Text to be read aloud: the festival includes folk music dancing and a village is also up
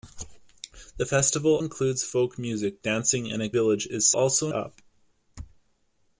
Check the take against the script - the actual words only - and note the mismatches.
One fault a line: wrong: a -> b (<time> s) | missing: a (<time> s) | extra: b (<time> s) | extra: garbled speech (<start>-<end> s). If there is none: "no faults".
no faults